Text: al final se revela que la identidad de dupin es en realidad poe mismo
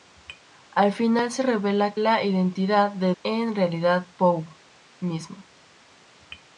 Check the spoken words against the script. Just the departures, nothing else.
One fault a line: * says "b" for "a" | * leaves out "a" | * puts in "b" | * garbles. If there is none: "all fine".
* leaves out "que"
* leaves out "dupin es"